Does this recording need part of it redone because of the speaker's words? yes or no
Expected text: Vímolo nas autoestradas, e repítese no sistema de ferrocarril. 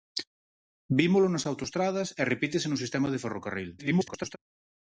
yes